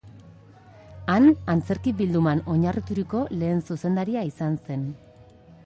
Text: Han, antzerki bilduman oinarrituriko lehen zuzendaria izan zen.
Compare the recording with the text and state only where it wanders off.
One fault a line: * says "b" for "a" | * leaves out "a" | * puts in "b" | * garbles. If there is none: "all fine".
all fine